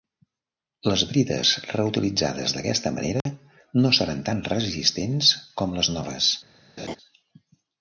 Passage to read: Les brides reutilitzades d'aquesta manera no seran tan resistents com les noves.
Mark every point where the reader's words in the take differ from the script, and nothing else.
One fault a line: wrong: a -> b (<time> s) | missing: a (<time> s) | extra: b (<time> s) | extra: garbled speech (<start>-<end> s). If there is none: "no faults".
no faults